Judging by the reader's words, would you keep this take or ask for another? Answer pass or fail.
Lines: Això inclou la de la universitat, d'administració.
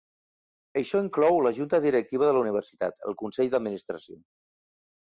fail